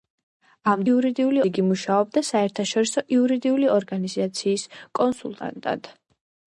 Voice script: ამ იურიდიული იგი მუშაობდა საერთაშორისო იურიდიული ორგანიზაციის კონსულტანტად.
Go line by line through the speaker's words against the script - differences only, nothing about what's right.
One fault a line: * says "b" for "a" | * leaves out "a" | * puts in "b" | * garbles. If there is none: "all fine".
all fine